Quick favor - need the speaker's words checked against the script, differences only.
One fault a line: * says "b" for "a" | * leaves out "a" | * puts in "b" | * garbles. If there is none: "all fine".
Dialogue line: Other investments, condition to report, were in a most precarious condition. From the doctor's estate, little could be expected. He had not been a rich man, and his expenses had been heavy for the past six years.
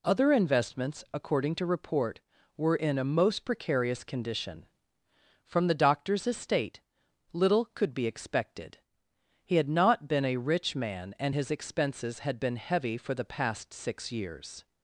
* says "according" for "condition"